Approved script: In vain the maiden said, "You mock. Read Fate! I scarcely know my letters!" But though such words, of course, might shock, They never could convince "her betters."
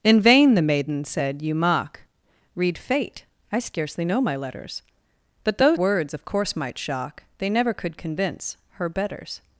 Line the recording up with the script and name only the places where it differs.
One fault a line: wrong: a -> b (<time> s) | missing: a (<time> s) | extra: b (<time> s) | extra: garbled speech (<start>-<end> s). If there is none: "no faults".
missing: such (5.8 s)